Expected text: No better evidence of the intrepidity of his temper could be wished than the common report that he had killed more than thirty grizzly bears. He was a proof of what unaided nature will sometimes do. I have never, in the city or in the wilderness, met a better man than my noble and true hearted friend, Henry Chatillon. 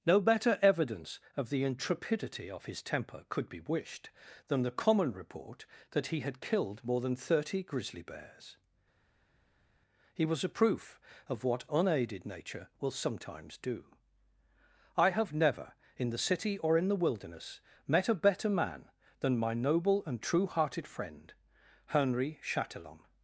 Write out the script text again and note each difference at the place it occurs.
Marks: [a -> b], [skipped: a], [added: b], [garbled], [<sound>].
No better evidence of the intrepidity of his temper could be wished than the common report that he had killed more than thirty grizzly bears. He was a proof of what unaided nature will sometimes do. I have never, in the city or in the wilderness, met a better man than my noble and true hearted friend, Henry Chatillon.